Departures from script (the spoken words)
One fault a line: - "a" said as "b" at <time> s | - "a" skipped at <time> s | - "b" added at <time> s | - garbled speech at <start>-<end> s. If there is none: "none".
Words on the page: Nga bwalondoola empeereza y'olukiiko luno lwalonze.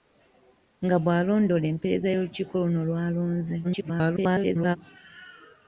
- garbled speech at 3.6-4.8 s